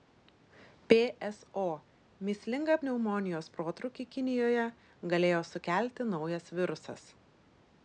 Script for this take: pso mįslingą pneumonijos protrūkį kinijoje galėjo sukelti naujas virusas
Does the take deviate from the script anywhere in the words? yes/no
no